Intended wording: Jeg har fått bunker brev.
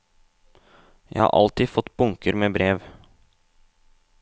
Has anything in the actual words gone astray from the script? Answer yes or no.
yes